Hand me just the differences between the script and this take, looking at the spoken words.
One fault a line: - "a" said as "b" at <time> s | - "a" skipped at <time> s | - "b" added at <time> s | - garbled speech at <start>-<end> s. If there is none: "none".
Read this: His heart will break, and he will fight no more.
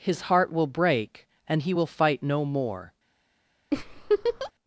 none